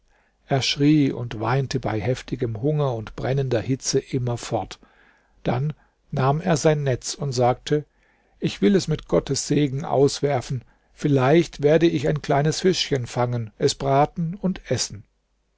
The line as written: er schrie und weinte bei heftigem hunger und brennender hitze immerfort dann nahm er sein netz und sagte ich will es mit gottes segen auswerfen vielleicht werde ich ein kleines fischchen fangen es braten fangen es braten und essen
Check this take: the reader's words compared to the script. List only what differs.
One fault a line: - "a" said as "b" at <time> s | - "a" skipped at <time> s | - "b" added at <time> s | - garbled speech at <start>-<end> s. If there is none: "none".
- "fangen es braten" skipped at 14.4 s